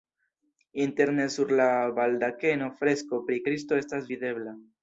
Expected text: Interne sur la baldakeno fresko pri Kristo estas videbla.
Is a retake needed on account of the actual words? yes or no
no